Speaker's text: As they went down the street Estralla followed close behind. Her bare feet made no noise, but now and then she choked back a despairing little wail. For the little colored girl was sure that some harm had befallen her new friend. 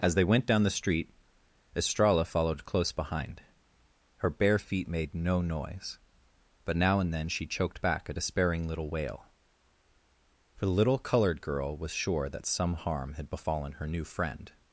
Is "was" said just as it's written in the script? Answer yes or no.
yes